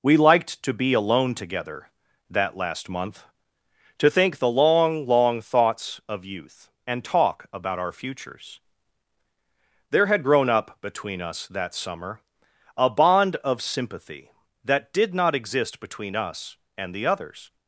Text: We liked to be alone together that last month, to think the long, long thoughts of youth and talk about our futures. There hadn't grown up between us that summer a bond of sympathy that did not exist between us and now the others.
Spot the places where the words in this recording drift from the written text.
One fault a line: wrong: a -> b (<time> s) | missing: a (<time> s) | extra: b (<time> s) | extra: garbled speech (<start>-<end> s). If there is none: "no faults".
wrong: hadn't -> had (10.1 s)
missing: now (16.9 s)